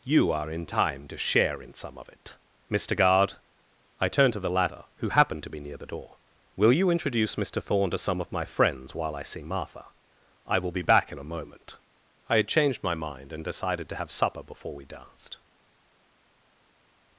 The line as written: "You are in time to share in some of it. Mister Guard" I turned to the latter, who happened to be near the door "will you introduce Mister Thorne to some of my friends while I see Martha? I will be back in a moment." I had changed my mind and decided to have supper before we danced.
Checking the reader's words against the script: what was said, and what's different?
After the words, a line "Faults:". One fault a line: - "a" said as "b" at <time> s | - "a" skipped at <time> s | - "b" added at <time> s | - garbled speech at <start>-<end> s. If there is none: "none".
"You are in time to share in some of it. Mister Guard" I turned to the latter, who happened to be near the door "will you introduce Mister Thorne to some of my friends while I see Martha? I will be back in a moment." I had changed my mind and decided to have supper before we danced.
Faults:
none